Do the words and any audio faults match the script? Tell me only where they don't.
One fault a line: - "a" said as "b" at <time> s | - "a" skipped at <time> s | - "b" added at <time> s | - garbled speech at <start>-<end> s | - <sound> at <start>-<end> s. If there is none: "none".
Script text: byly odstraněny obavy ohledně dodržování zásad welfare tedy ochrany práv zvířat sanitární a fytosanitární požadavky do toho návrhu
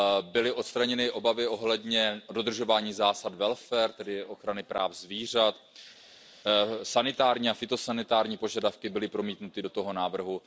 - "byly promítnuty" added at 8.9 s